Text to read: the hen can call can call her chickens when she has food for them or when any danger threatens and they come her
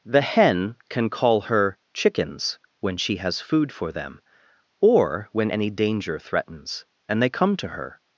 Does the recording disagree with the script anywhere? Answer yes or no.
yes